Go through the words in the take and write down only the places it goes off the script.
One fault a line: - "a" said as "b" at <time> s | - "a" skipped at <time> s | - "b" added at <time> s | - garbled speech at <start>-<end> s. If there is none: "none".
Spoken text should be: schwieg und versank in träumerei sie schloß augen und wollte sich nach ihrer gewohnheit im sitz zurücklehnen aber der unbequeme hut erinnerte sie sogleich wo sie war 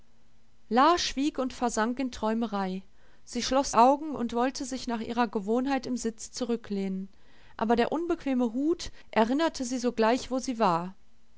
none